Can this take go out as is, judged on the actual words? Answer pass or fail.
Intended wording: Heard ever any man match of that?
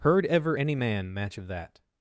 pass